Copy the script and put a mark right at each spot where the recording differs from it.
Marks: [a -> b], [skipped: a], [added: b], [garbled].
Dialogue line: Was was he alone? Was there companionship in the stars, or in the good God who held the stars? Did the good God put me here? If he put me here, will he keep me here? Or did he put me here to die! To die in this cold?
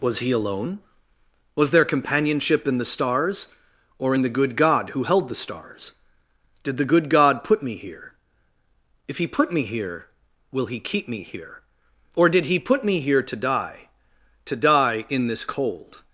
Was [skipped: was] he alone? Was there companionship in the stars, or in the good God who held the stars? Did the good God put me here? If he put me here, will he keep me here? Or did he put me here to die! To die in this cold?